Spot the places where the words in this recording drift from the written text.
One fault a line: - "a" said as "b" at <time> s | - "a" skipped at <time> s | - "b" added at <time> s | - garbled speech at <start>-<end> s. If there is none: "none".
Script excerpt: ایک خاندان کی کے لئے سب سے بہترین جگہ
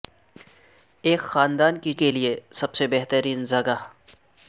none